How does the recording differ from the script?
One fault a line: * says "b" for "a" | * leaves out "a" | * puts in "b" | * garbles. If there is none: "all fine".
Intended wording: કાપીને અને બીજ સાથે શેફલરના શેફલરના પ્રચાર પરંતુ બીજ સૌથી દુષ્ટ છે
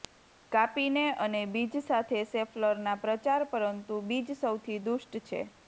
* leaves out "શેફલરના"